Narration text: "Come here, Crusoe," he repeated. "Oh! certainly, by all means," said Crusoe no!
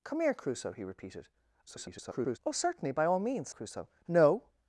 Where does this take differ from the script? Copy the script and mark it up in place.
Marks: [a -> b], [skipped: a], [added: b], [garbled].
"Come here, Crusoe," he repeated. [garbled] "Oh! certainly, by all means," [skipped: said] Crusoe no!